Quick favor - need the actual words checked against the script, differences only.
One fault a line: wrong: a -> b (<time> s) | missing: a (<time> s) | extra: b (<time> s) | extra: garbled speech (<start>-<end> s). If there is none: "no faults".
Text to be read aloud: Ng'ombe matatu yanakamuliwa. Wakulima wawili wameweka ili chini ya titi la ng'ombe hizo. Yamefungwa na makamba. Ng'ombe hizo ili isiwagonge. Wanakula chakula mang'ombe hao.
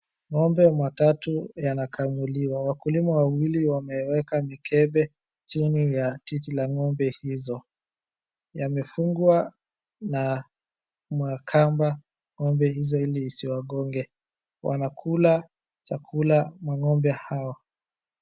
wrong: ili -> mikebe (4.4 s)